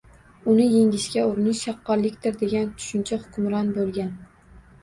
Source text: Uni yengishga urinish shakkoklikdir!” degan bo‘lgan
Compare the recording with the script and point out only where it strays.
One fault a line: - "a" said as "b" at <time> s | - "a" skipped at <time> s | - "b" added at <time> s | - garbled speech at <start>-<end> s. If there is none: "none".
- "tushuncha hukmron" added at 2.8 s